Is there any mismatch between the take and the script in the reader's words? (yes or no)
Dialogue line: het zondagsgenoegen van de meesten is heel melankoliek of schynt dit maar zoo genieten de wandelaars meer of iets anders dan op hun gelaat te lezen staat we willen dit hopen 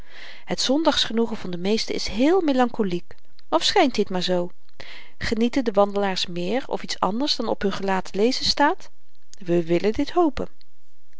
no